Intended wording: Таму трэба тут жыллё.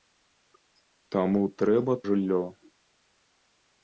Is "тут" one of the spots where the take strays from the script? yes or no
yes